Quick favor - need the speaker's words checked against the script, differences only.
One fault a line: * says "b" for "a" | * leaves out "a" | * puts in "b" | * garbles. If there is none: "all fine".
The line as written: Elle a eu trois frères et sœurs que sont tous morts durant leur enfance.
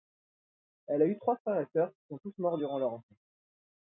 * says "qui" for "que"